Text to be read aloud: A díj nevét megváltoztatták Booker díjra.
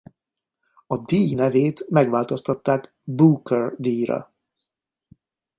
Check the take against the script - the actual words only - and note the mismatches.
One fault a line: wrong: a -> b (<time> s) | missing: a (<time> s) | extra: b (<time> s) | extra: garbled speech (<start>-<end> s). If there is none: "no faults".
no faults